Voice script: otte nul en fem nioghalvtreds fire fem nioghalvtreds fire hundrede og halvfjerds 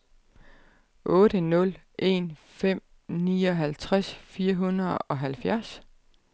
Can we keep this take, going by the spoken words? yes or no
no